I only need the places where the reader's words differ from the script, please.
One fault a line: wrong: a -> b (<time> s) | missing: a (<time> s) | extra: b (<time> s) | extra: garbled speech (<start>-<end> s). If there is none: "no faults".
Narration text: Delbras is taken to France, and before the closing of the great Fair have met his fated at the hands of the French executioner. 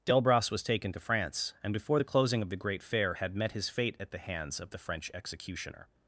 wrong: is -> was (0.5 s)
wrong: have -> had (3.1 s)
wrong: fated -> fate (3.7 s)